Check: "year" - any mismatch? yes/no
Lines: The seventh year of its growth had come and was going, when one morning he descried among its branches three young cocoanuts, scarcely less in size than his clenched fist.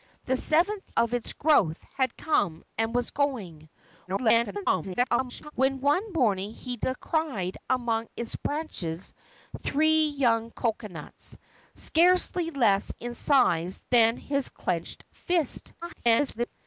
yes